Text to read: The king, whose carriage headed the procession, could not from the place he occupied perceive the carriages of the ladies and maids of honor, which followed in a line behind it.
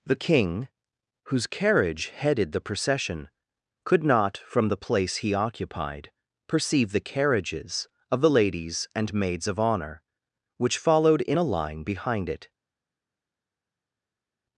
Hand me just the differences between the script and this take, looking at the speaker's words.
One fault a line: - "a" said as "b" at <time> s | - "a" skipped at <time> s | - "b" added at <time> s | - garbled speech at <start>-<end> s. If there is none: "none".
none